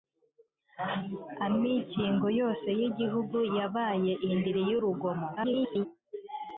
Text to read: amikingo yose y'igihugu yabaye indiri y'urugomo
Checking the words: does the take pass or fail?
fail